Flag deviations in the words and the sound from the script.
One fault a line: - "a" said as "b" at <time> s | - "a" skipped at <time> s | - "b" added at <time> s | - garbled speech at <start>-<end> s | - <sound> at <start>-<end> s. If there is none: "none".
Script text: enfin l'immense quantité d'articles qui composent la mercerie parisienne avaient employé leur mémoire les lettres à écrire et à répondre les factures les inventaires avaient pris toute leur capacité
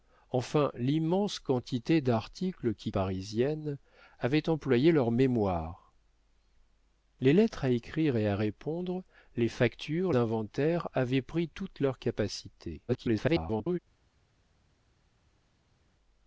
- "composent la mercerie" skipped at 2.9 s
- "les" skipped at 10.1 s
- garbled speech at 12.9-13.8 s